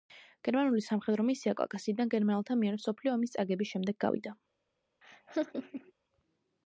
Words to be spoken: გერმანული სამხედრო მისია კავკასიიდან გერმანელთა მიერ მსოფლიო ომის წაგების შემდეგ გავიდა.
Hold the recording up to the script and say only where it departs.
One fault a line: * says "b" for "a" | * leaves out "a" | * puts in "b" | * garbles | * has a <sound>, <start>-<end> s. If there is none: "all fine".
* has a laugh, 5.0-5.9 s